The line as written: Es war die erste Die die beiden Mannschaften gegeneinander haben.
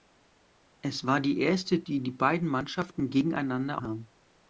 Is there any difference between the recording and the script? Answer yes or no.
no